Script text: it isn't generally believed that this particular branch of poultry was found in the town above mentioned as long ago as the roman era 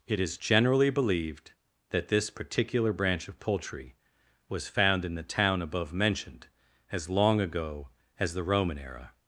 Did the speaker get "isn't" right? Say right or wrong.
wrong